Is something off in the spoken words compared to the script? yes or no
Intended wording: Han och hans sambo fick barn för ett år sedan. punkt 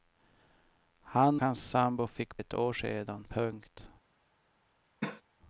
yes